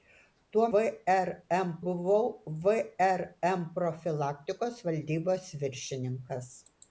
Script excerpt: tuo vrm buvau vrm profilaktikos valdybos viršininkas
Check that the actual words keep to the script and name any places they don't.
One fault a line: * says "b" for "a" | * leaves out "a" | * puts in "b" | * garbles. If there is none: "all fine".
all fine